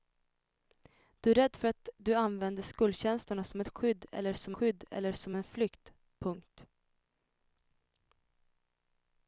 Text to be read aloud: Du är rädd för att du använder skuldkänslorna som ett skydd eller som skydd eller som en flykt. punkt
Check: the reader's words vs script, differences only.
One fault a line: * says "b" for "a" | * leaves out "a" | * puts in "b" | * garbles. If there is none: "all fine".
all fine